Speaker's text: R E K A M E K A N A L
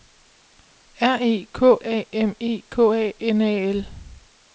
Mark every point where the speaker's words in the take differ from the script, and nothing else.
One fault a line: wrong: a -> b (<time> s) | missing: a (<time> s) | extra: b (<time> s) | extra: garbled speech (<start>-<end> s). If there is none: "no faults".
no faults